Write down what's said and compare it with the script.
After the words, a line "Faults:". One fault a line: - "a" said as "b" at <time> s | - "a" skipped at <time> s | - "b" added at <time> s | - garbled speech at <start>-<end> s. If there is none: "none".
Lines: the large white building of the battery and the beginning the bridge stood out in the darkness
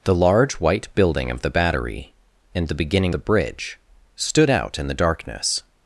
the large white building of the battery and the beginning the bridge stood out in the darkness
Faults:
none